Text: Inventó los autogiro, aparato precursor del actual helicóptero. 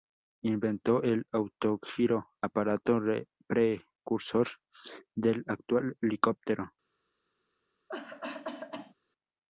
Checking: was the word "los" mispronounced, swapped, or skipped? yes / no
yes